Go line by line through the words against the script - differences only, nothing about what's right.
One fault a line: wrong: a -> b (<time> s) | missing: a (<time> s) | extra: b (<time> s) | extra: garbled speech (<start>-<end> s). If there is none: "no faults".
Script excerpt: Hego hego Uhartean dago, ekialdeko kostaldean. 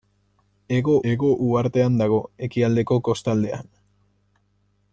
no faults